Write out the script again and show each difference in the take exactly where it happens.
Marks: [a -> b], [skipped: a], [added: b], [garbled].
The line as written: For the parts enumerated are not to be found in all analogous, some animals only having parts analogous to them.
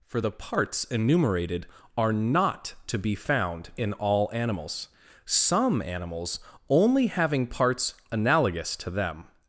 For the parts enumerated are not to be found in all [analogous, -> animals] some animals only having parts analogous to them.